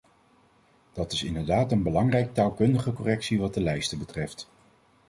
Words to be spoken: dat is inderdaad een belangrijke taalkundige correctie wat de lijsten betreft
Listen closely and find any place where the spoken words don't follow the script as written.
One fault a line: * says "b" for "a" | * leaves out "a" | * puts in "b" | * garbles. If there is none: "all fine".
all fine